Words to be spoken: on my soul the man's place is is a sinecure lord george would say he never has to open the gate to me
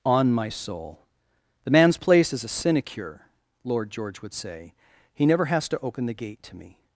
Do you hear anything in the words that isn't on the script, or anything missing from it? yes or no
yes